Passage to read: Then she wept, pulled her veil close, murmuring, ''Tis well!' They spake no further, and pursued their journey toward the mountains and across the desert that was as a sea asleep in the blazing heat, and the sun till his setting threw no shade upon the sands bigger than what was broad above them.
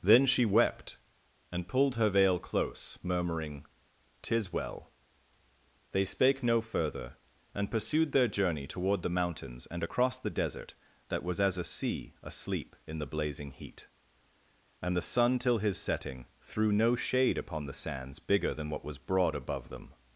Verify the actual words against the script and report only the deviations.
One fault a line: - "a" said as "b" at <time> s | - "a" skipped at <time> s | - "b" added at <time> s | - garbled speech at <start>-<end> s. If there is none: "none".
- "and" added at 1.5 s